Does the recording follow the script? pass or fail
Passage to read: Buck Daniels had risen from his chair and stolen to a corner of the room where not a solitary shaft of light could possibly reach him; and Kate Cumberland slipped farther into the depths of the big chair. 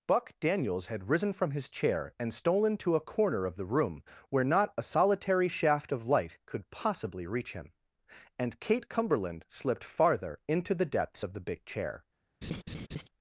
pass